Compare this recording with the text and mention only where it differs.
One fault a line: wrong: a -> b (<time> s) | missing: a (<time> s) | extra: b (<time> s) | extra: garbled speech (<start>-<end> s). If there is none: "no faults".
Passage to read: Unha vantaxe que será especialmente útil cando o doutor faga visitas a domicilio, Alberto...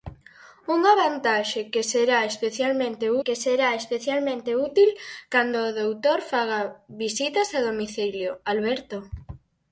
extra: que será especialmente (3.2 s)